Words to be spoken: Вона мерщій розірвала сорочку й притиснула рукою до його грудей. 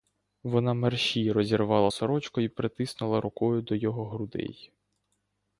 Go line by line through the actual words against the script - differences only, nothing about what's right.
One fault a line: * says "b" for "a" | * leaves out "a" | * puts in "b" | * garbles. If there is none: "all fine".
all fine